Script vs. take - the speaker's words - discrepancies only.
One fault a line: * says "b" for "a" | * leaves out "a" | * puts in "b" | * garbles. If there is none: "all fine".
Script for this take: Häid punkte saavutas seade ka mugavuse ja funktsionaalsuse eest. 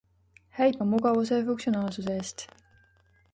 * leaves out "punkte saavutas seade"